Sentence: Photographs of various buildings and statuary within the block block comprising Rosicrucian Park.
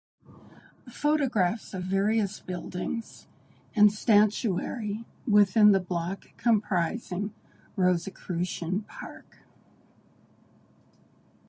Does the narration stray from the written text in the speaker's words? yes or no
yes